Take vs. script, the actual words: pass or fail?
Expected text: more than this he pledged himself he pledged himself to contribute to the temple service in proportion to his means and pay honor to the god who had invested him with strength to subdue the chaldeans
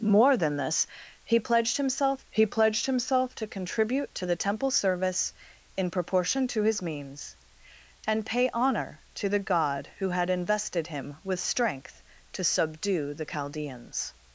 pass